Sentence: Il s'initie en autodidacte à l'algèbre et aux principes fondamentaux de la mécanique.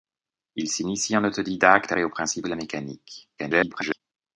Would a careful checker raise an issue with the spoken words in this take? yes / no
yes